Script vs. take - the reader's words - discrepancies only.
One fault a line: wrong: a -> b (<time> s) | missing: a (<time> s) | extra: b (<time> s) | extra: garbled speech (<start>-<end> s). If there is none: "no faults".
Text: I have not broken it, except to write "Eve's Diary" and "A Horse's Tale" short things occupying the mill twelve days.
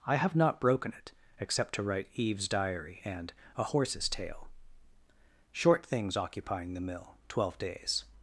no faults